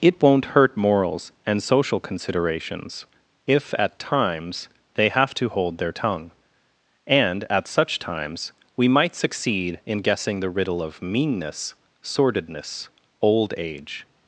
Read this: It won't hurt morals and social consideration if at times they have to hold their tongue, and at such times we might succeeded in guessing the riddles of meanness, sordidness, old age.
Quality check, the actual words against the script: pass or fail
fail